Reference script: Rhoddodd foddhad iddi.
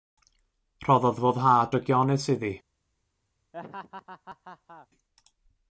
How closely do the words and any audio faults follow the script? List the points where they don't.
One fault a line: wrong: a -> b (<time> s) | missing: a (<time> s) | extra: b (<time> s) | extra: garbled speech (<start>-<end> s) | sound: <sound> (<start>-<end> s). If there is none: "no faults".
extra: drygionus (1.7 s)
sound: laugh (3.5-4.9 s)